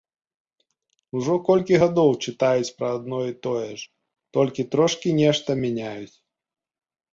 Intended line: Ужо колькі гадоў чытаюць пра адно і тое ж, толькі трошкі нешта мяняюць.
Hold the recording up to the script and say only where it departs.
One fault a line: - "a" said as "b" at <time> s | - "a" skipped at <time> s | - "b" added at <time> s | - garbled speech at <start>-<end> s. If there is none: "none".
none